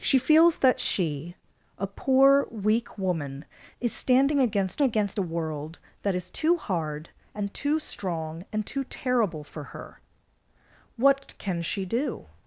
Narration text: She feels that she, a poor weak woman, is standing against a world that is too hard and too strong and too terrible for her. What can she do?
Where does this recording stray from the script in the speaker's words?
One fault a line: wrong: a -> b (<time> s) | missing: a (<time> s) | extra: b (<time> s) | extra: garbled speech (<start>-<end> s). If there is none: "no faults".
extra: against (4.8 s)